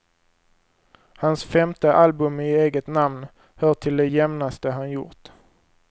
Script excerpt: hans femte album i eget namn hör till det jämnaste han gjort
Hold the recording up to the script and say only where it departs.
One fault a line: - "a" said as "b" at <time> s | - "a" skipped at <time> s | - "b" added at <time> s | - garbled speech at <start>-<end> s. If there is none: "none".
none